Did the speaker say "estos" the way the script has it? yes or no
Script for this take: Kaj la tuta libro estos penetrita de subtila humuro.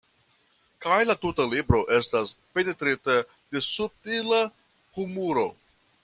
no